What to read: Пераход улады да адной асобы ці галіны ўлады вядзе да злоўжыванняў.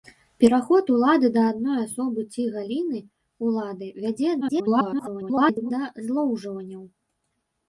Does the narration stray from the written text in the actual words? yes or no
yes